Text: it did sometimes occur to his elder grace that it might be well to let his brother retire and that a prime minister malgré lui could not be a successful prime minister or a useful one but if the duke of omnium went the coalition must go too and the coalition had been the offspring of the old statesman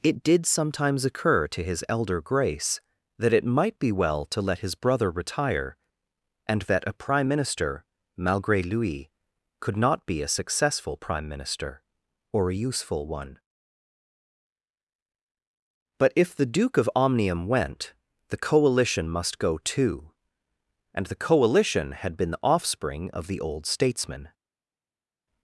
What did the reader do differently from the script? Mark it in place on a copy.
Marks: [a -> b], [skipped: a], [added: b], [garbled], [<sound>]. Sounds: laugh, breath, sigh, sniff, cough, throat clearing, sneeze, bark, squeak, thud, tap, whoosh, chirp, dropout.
it did sometimes occur to his elder grace that it might be well to let his brother retire and that a prime minister malgré lui could not be a successful prime minister or a useful one but if the duke of omnium went the coalition must go too and the coalition had been the offspring of the old statesman